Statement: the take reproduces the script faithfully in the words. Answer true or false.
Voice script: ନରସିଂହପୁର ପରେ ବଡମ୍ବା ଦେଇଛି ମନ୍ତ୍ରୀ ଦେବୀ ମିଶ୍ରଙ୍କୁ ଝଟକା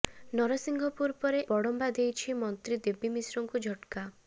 true